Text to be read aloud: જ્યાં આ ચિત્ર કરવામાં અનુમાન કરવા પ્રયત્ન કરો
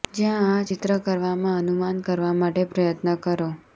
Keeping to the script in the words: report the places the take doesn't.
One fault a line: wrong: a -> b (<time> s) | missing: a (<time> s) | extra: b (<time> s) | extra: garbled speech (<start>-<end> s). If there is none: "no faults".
extra: માટે (2.3 s)